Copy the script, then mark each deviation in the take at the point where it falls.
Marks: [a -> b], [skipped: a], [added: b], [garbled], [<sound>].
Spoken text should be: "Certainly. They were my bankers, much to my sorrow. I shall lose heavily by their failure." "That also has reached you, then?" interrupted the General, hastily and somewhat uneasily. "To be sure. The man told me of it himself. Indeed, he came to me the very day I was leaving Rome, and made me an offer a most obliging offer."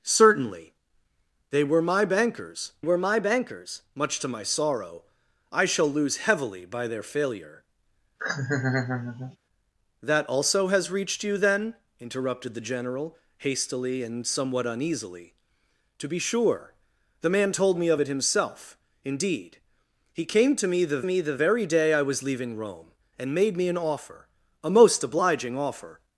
"Certainly. They were my bankers, [added: were my bankers] much to my sorrow. I shall lose heavily by their failure." [laugh] "That also has reached you, then?" interrupted the General, hastily and somewhat uneasily. "To be sure. The man told me of it himself. Indeed, he came to me the [added: me the] very day I was leaving Rome, and made me an offer a most obliging offer."